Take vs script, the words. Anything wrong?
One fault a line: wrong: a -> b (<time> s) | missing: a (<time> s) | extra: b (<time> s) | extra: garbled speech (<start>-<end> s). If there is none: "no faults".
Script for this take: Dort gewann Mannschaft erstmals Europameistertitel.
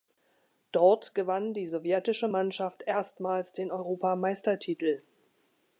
extra: die sowjetische (1.5 s)
extra: den (3.5 s)